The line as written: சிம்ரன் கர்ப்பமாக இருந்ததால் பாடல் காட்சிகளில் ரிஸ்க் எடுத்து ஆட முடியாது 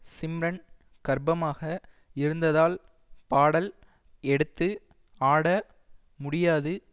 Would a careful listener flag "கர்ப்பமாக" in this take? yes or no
no